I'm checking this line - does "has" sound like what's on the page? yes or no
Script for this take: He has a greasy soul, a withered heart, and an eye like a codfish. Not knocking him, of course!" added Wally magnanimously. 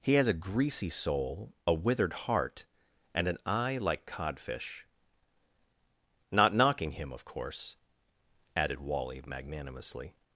yes